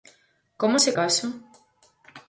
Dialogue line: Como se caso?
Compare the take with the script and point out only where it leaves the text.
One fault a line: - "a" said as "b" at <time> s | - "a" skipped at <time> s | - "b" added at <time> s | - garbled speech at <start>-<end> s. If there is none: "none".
none